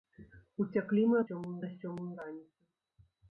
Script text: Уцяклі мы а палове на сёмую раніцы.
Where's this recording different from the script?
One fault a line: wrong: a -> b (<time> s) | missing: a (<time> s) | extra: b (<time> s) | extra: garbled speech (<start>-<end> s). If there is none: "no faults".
wrong: палове -> сёмую (1.3 s)